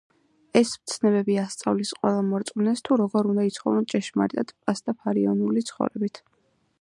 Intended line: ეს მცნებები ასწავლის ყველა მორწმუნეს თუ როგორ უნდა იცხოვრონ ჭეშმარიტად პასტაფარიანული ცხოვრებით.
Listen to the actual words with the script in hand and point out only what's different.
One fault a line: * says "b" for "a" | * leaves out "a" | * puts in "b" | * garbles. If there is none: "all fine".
all fine